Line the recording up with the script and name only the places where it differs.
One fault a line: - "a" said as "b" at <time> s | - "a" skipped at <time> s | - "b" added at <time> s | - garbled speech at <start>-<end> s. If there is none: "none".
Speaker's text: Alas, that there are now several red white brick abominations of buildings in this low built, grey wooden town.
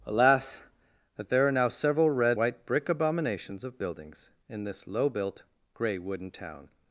none